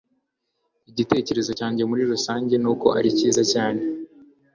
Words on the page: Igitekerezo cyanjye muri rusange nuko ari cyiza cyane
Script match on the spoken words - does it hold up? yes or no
yes